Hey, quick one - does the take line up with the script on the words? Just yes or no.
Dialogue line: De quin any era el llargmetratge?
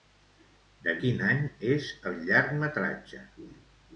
no